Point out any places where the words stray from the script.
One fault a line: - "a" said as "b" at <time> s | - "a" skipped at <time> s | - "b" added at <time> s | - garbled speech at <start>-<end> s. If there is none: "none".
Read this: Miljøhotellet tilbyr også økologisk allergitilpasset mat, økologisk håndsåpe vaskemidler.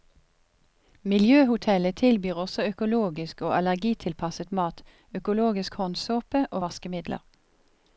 - "og" added at 3.4 s
- "og" added at 6.5 s